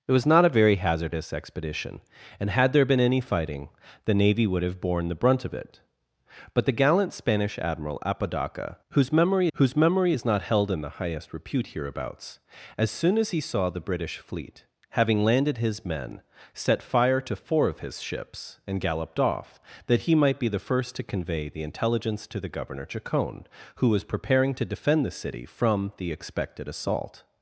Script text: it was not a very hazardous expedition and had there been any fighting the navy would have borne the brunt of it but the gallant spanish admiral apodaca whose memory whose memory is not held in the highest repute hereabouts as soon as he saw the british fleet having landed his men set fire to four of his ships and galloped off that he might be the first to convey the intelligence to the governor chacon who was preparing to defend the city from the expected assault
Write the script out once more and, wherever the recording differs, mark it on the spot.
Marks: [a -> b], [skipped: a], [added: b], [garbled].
it was not a very hazardous expedition and had there been any fighting the navy would have borne the brunt of it but the gallant spanish admiral apodaca whose memory whose memory is not held in the highest repute hereabouts as soon as he saw the british fleet having landed his men set fire to four of his ships and galloped off that he might be the first to convey the intelligence to the governor chacon who was preparing to defend the city from the expected assault